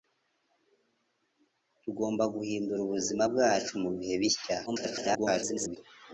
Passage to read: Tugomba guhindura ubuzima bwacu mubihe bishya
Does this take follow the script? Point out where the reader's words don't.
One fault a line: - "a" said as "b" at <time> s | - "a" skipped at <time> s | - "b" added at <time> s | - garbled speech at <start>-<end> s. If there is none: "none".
- garbled speech at 4.7-5.8 s